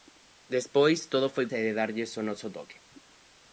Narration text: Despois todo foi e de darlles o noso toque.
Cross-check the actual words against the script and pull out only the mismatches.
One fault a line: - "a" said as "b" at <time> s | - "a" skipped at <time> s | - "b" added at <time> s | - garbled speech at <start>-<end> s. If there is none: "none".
none